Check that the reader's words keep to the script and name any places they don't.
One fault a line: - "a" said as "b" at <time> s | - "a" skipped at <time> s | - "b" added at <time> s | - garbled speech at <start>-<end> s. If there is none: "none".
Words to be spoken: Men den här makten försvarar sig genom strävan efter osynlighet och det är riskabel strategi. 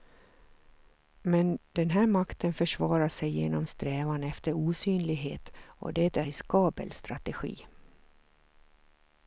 none